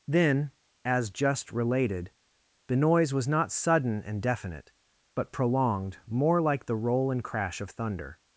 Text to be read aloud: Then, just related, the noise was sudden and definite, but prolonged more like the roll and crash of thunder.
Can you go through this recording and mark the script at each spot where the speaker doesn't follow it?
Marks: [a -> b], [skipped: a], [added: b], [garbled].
Then, [added: as] just related, the noise was [added: not] sudden and definite, but prolonged more like the roll and crash of thunder.